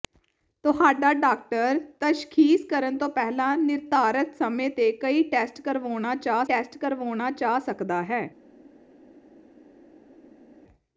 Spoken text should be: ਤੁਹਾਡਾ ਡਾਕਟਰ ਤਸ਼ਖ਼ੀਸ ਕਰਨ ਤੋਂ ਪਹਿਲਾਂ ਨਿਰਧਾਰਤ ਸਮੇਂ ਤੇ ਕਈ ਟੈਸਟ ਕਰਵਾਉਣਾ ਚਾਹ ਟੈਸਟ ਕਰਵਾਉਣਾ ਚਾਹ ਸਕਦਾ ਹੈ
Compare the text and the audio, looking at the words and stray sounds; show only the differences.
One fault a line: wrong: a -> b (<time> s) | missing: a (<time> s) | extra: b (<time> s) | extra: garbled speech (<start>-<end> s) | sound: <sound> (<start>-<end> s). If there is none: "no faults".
no faults